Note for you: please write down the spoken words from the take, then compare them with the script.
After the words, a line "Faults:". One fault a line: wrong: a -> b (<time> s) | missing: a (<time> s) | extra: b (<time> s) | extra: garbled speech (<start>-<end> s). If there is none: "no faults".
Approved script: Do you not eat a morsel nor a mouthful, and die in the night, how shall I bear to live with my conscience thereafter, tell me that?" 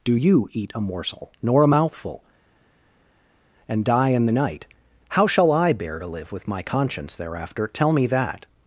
Do you eat a morsel nor a mouthful, and die in the night, how shall I bear to live with my conscience thereafter, tell me that?"
Faults:
missing: not (0.5 s)